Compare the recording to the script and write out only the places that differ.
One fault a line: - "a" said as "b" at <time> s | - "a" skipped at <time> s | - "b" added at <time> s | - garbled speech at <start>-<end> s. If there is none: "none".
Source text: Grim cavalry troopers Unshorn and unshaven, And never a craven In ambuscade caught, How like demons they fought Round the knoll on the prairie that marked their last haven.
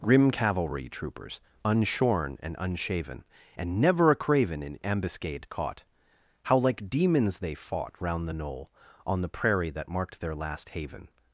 none